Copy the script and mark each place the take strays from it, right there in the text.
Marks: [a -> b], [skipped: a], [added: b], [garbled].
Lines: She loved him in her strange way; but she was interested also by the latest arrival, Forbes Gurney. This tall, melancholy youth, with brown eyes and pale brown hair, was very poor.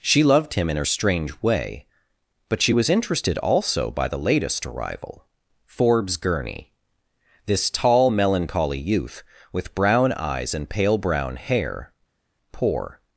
She loved him in her strange way; but she was interested also by the latest arrival, Forbes Gurney. This tall, melancholy youth, with brown eyes and pale brown hair, [skipped: was very] poor.